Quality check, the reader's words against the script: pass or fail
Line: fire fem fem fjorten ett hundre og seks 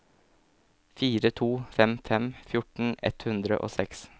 fail